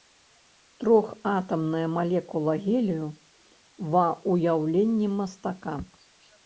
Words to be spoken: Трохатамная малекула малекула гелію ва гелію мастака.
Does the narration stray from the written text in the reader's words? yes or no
yes